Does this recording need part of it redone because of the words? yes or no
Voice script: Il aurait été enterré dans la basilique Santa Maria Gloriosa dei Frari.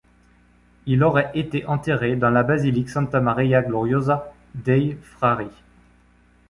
no